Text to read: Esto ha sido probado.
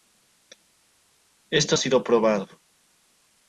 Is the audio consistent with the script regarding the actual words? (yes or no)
yes